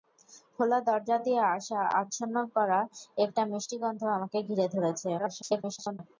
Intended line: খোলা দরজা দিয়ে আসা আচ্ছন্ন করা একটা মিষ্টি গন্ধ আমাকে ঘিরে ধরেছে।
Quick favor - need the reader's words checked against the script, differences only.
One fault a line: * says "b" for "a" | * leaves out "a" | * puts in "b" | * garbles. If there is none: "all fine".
* garbles